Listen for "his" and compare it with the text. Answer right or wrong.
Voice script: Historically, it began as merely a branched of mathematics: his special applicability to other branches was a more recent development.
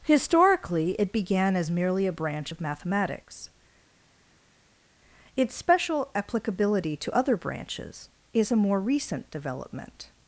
wrong